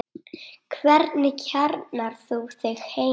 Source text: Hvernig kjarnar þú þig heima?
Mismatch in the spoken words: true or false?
false